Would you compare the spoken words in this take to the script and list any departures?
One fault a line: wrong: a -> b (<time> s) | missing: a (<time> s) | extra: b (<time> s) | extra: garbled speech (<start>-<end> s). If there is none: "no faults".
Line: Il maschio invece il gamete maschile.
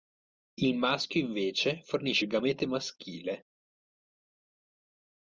extra: fornisce (1.8 s)